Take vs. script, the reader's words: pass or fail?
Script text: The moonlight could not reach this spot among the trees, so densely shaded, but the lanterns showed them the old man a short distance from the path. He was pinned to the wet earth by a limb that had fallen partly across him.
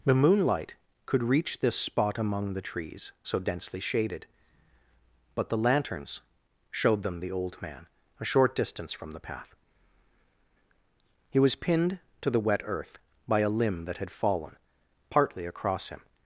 fail